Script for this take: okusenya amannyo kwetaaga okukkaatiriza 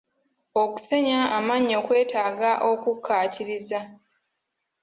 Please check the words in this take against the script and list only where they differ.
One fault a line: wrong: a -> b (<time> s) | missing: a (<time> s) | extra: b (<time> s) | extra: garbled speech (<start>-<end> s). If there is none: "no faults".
no faults